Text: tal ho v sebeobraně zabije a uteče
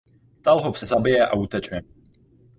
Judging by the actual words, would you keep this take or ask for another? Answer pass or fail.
fail